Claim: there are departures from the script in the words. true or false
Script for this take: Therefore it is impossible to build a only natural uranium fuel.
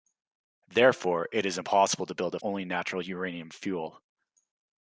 false